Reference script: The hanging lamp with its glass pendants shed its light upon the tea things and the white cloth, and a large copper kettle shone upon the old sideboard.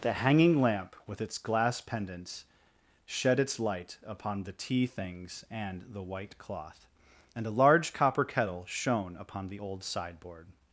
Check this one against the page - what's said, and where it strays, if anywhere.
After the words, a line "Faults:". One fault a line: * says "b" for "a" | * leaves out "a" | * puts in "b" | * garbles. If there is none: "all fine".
The hanging lamp with its glass pendants shed its light upon the tea things and the white cloth, and a large copper kettle shone upon the old sideboard.
Faults:
all fine